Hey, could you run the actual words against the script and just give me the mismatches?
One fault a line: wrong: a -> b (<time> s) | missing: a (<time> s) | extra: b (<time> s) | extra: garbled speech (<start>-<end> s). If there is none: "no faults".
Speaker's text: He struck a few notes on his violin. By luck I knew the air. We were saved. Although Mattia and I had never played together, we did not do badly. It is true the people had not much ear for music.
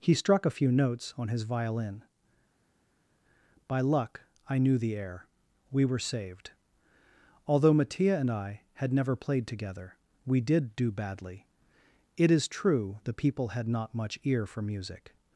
missing: not (10.8 s)